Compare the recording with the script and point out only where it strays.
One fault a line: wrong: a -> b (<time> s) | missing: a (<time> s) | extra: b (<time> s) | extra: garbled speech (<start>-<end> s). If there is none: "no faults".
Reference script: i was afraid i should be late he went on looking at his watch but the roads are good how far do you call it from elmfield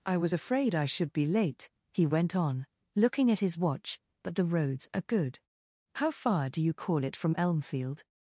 no faults